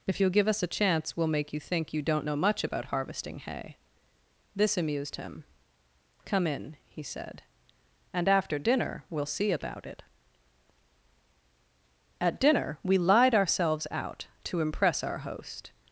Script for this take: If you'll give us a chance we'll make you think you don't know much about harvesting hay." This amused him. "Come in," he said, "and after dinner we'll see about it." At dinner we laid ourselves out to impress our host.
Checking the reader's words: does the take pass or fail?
fail